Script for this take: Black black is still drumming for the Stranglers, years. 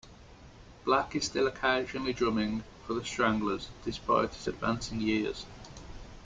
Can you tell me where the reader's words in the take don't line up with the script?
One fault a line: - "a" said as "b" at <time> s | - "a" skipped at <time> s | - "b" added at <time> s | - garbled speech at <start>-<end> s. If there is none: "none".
- "black" skipped at 1.1 s
- "occasionally" added at 1.4 s
- "despite his advancing" added at 3.8 s